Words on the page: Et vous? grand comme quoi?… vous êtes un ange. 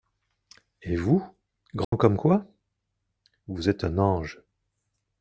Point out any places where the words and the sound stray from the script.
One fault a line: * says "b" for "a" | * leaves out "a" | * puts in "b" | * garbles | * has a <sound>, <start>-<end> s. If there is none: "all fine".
* has a dropout, 1.8-1.9 s